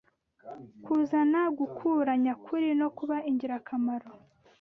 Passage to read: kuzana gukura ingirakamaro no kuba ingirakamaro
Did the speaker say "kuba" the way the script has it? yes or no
yes